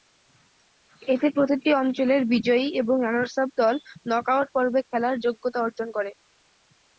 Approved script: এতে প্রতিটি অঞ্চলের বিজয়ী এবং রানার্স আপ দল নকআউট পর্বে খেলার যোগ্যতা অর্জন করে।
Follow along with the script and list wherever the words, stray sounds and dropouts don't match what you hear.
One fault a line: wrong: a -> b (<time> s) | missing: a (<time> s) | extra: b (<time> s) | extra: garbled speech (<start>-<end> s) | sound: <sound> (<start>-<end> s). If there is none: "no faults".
no faults